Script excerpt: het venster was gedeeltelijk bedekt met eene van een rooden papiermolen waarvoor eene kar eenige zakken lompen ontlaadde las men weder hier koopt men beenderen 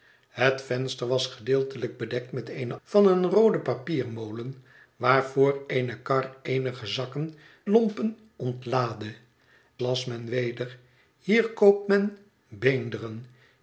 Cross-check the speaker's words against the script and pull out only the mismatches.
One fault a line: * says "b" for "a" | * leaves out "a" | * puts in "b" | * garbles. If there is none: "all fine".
all fine